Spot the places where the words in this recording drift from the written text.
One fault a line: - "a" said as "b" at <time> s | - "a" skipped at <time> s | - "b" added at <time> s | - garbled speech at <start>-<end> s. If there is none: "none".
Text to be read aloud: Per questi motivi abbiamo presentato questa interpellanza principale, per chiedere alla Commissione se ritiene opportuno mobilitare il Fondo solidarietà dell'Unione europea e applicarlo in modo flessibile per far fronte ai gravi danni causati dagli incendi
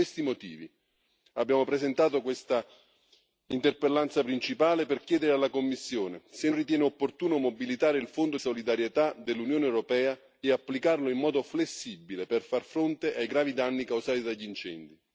none